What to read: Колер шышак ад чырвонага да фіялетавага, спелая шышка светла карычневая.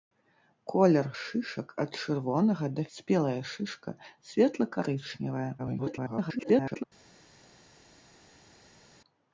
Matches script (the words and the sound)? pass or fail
fail